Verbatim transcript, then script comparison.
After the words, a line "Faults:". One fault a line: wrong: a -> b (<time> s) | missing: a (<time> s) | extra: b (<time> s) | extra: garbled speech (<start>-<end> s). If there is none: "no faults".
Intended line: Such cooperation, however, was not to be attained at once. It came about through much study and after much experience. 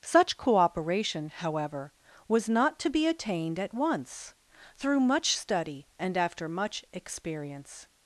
Such cooperation, however, was not to be attained at once. through much study and after much experience.
Faults:
missing: It came about (4.3 s)